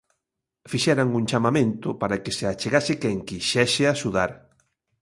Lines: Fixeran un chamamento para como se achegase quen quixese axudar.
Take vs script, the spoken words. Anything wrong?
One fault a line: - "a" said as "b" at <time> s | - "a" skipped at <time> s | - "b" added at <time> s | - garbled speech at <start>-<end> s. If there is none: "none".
- "como" said as "que" at 2.2 s